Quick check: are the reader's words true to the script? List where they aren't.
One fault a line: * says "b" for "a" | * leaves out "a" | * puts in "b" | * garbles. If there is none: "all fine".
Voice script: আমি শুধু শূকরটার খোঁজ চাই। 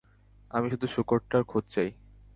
all fine